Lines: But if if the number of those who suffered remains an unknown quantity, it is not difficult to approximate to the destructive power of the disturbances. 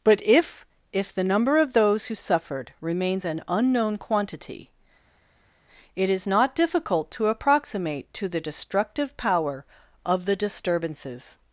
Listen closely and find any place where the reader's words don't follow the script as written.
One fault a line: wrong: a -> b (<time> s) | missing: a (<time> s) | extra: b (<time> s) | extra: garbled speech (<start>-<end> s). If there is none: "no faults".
no faults